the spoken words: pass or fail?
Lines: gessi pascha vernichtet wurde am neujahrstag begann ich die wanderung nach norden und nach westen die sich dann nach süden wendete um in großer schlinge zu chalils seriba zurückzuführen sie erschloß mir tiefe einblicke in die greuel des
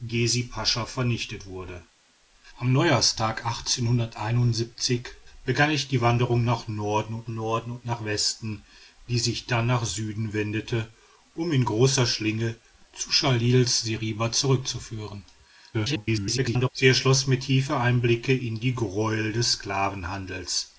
fail